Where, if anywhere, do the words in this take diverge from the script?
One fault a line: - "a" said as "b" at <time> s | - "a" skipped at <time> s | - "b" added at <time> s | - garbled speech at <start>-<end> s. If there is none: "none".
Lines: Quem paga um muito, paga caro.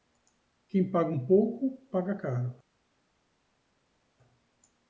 - "muito" said as "pouco" at 1.2 s